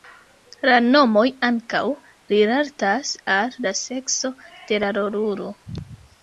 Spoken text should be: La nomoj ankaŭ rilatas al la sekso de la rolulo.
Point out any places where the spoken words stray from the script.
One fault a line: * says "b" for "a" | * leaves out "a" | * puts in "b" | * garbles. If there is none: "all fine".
all fine